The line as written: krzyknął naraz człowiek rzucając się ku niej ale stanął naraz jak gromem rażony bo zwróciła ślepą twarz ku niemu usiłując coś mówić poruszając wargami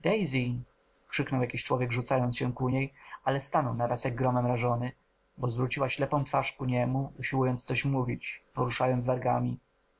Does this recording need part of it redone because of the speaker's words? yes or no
yes